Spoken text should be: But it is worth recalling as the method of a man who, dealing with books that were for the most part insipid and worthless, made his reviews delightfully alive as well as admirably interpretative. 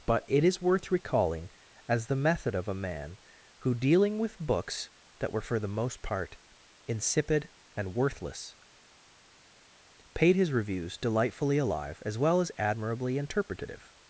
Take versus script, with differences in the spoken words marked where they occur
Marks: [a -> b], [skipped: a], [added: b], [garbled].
But it is worth recalling as the method of a man who, dealing with books that were for the most part insipid and worthless, [made -> paid] his reviews delightfully alive as well as admirably interpretative.